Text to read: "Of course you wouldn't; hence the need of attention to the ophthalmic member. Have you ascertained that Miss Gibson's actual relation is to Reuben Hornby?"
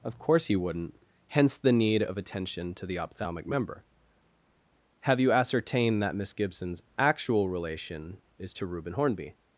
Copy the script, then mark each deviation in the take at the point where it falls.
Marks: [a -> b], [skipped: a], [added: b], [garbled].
"Of course you wouldn't; hence the need of attention to the ophthalmic member. Have you ascertained that Miss Gibson's actual relation is to Reuben Hornby?"